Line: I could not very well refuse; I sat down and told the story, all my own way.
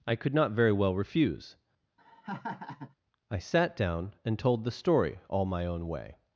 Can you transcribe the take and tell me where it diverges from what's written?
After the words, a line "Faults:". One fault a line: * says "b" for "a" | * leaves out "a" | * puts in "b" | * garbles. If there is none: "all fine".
I could not very well refuse; I sat down and told the story, all my own way.
Faults:
all fine